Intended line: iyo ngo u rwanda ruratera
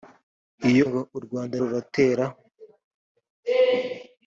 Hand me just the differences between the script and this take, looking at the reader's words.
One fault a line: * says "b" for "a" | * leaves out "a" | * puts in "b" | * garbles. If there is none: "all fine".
all fine